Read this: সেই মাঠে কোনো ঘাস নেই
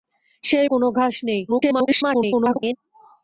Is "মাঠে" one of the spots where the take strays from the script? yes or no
yes